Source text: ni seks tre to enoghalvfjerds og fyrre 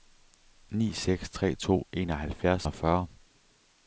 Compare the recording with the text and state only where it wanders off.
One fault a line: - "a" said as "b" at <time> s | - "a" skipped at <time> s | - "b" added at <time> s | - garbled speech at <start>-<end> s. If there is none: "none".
none